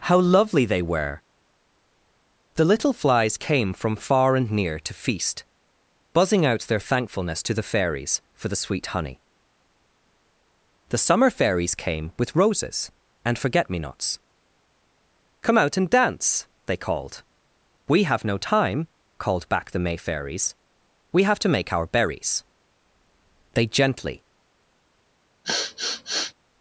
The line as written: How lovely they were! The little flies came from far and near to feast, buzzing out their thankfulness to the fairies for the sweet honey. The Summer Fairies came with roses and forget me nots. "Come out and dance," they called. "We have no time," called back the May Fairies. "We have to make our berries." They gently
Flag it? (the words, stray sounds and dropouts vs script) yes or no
yes